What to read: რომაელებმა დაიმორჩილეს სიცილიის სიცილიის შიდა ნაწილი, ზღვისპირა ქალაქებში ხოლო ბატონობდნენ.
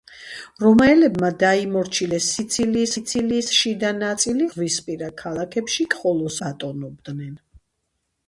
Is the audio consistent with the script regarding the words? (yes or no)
yes